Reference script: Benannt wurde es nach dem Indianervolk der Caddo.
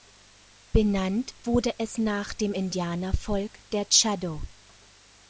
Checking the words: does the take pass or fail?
pass